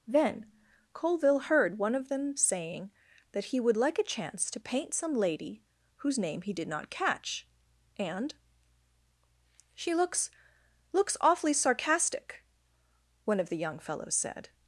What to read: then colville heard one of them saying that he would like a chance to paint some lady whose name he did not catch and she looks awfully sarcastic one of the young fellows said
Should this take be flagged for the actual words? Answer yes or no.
yes